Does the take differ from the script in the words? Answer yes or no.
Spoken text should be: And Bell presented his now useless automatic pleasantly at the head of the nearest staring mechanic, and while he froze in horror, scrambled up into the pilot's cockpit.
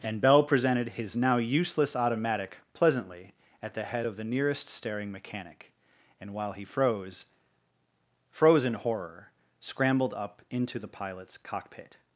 yes